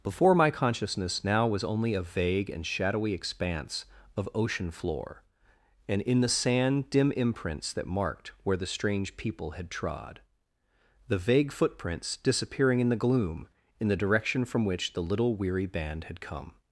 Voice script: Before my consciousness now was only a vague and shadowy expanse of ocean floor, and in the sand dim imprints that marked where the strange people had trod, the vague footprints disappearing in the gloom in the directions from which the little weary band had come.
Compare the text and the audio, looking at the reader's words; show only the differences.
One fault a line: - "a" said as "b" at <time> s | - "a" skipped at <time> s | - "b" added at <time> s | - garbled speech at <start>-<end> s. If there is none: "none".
- "directions" said as "direction" at 14.0 s